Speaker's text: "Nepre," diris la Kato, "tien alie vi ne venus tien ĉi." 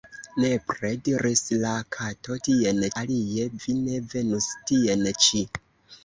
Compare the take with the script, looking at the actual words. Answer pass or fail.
pass